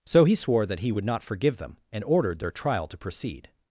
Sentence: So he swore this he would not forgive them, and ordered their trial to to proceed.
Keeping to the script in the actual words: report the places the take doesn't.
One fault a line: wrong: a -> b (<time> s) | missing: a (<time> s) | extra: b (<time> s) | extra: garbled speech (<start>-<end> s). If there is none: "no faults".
wrong: this -> that (0.7 s)
missing: to (3.0 s)